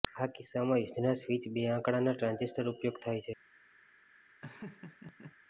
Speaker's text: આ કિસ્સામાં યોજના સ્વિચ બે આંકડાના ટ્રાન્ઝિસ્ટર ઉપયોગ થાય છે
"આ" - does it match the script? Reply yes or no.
yes